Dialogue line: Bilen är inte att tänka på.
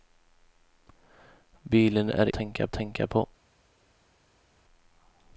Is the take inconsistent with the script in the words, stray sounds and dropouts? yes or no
yes